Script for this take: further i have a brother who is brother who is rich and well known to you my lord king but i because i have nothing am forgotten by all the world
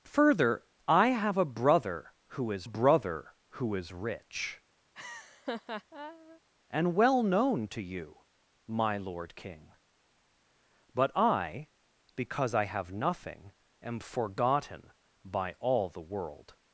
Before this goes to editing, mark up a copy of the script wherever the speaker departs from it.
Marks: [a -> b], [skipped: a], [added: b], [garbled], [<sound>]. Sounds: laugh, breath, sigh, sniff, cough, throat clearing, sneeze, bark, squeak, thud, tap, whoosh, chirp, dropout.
further i have a brother who is brother who is rich [laugh] and well known to you my lord king but i because i have nothing am forgotten by all the world